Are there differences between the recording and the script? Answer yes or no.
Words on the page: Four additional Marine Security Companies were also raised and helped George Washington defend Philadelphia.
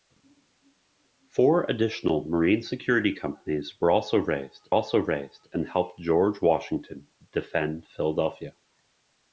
yes